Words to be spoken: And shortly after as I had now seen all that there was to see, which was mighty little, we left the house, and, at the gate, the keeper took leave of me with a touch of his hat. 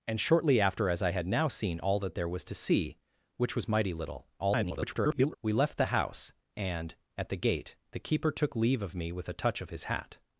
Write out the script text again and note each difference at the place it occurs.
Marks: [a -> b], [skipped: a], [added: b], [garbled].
And shortly after as I had now seen all that there was to see, which was mighty little, [garbled] we left the house, and, at the gate, the keeper took leave of me with a touch of his hat.